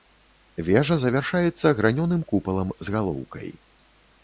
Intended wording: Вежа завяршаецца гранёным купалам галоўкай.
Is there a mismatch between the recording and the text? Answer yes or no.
yes